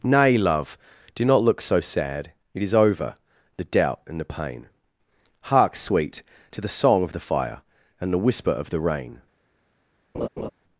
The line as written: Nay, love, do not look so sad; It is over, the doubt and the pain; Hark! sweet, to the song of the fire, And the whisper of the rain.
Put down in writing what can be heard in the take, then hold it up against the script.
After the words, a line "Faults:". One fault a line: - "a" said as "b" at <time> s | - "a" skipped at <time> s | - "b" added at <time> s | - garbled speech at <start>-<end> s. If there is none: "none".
Nay, love, do not look so sad; It is over, the doubt and the pain; Hark! sweet, to the song of the fire, And the whisper of the rain.
Faults:
none